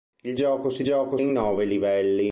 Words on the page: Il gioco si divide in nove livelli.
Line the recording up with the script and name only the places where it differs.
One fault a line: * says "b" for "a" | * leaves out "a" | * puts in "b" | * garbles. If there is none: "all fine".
* says "gioco" for "divide"